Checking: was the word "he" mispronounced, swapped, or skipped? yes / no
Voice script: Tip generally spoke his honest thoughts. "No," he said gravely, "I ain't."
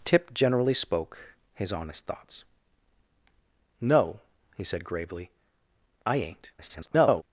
no